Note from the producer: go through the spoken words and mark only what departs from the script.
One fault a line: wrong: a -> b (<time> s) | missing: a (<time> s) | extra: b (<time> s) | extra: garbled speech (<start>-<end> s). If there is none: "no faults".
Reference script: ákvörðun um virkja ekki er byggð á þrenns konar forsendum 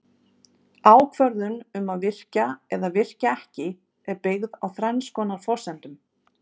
extra: að virkja eða (1.9 s)